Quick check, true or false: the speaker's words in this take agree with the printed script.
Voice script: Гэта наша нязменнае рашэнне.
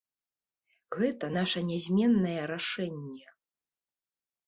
true